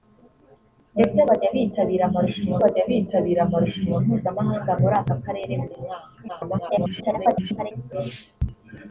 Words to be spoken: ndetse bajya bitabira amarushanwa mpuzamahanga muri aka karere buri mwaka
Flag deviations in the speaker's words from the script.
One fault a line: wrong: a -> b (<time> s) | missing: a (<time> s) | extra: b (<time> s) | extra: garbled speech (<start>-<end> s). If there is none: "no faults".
extra: bajya bitabira amarushanwa (2.6 s)
extra: garbled speech (6.3-7.7 s)